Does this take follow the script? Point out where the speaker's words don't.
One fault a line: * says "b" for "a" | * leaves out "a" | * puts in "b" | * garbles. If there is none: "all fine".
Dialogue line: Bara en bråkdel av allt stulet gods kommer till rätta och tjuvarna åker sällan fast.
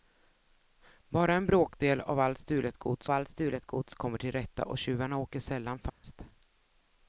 * puts in "allt stulet gods"